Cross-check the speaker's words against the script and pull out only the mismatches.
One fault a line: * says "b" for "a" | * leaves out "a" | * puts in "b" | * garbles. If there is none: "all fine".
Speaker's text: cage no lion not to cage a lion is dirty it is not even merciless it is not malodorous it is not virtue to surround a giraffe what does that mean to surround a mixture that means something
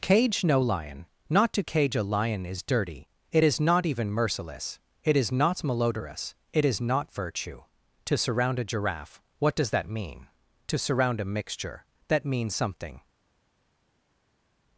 all fine